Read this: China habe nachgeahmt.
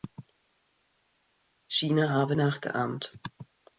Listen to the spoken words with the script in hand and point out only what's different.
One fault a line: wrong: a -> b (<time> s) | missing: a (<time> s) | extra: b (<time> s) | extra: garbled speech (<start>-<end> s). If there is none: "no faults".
no faults